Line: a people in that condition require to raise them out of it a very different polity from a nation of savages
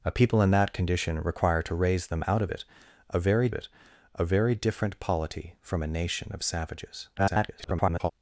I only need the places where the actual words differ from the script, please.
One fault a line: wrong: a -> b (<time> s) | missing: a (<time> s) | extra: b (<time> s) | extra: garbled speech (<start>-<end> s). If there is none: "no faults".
extra: it a very (3.5 s)
extra: garbled speech (7.2-8.1 s)